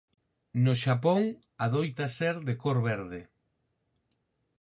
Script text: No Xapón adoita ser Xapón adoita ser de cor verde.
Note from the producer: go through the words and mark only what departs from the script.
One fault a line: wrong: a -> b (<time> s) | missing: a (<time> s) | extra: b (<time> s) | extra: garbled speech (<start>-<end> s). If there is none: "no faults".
missing: Xapón adoita ser (2.4 s)